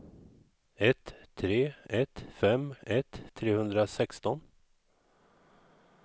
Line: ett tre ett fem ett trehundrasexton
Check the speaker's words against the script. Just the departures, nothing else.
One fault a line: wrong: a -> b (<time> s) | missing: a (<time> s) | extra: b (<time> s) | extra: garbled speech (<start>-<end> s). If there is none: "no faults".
no faults